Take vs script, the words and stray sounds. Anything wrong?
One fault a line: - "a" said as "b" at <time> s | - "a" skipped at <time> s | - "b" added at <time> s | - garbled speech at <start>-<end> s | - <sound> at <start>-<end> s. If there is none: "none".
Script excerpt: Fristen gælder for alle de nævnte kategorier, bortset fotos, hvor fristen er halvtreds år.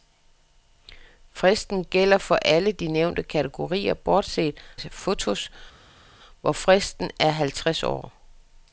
none